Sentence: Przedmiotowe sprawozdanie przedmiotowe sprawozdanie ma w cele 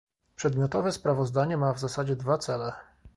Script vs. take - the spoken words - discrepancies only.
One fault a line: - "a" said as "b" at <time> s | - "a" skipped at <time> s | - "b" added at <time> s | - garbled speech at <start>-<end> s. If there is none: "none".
- "przedmiotowe sprawozdanie ma w" said as "ma w zasadzie dwa" at 1.6 s